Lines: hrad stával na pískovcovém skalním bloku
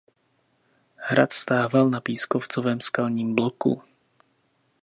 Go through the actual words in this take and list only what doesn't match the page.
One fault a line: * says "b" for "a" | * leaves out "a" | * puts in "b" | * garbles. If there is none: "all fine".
all fine